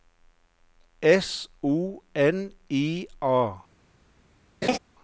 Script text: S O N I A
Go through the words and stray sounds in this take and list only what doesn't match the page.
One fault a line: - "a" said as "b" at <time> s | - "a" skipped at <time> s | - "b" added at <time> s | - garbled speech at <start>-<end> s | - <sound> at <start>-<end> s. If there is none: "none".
- laugh at 4.6-4.8 s